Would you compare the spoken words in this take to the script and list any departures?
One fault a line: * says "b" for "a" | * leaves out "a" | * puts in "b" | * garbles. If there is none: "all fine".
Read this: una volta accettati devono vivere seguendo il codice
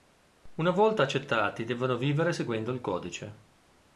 all fine